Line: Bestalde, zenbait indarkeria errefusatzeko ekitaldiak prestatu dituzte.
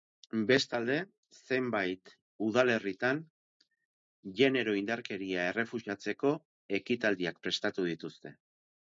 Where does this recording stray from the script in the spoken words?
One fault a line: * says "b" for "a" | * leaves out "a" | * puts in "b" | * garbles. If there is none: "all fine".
* puts in "udalerritan genero"